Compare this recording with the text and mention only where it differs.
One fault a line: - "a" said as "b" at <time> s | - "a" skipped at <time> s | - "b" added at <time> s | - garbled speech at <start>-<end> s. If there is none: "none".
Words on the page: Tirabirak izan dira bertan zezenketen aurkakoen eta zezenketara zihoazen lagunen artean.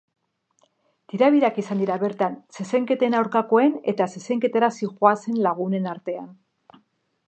none